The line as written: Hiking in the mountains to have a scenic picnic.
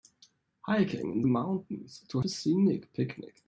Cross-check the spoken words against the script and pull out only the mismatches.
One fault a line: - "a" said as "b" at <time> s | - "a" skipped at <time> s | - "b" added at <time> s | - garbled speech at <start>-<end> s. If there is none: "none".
- "the" skipped at 1.2 s
- "have" skipped at 2.2 s